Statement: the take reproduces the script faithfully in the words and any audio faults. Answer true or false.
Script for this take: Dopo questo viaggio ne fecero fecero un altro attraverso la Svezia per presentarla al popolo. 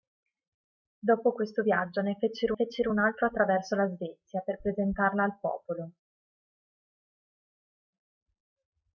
true